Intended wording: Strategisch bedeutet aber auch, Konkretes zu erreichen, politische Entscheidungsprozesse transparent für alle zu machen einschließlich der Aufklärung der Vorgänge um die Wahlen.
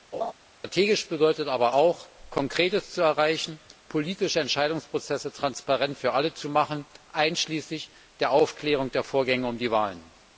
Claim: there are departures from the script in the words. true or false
false